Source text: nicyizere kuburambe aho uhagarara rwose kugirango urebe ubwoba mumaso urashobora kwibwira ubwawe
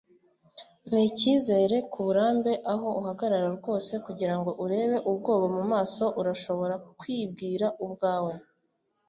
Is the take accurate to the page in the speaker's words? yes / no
yes